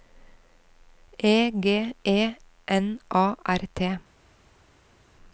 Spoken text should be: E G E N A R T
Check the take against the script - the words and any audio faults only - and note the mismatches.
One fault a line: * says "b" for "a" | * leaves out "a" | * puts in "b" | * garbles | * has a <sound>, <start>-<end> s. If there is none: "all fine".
all fine